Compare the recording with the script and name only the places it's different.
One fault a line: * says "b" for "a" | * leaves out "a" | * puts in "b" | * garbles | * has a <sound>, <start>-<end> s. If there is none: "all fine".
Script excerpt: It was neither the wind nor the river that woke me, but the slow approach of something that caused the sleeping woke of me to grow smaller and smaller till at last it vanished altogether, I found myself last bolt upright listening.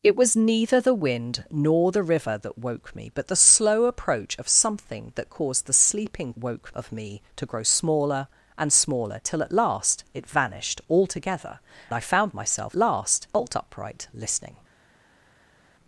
all fine